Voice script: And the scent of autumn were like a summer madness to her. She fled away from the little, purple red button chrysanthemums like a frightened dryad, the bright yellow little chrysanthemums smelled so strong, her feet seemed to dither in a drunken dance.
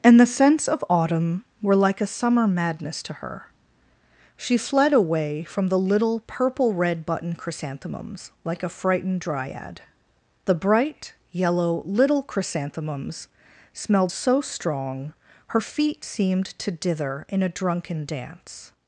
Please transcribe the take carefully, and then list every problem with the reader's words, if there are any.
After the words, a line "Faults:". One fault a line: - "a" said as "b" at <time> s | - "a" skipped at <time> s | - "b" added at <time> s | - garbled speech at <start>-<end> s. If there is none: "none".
And the scents of autumn were like a summer madness to her. She fled away from the little, purple red button chrysanthemums like a frightened dryad, the bright yellow little chrysanthemums smelled so strong, her feet seemed to dither in a drunken dance.
Faults:
- "scent" said as "scents" at 0.2 s